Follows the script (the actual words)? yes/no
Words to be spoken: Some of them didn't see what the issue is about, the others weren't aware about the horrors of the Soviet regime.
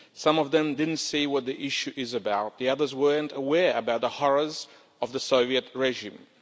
yes